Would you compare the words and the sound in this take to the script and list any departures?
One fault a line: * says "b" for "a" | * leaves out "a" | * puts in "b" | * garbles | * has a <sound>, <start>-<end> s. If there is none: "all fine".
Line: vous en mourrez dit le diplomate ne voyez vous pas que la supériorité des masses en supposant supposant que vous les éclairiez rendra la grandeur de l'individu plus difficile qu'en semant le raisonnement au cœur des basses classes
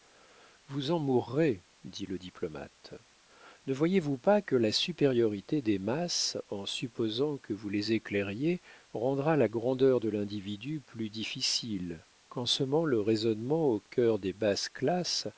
* leaves out "supposant"